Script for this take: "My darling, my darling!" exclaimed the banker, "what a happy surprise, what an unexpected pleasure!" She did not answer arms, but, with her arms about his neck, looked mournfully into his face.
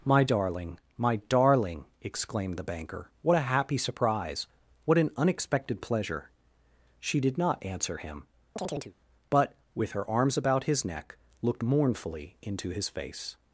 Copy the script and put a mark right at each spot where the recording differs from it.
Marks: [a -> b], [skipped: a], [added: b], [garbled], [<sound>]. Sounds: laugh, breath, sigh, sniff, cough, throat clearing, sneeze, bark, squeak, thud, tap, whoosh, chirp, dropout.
"My darling, my darling!" exclaimed the banker, "what a happy surprise, what an unexpected pleasure!" She did not answer [arms, -> him] [chirp] but, with her arms about his neck, looked mournfully into his face.